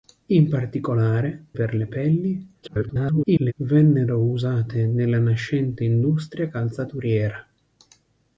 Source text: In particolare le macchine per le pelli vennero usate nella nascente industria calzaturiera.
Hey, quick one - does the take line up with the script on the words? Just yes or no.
no